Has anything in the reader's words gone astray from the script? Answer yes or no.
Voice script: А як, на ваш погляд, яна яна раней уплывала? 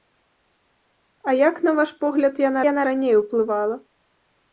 no